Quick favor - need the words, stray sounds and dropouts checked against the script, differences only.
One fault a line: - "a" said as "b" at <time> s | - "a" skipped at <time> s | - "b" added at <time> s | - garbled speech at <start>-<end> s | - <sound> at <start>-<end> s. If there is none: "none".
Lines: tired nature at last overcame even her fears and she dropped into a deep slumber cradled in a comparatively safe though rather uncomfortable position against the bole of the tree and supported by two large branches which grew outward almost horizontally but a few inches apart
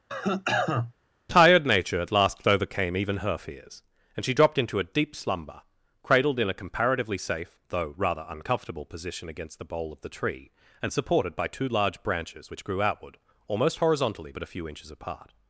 - cough at 0.1-0.9 s